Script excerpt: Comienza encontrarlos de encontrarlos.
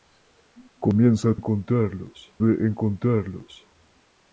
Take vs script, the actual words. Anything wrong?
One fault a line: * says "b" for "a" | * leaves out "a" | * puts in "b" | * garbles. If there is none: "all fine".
all fine